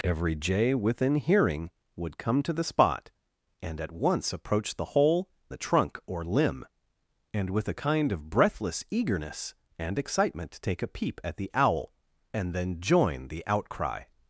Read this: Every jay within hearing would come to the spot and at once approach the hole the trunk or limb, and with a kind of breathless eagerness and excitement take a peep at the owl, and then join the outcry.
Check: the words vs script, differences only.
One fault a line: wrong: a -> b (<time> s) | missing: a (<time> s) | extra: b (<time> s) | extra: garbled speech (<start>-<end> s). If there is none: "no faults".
no faults